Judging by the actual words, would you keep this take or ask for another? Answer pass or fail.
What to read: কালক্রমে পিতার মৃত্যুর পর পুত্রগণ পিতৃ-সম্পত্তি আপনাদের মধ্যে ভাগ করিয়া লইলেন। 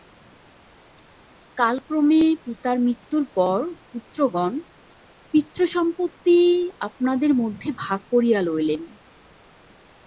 pass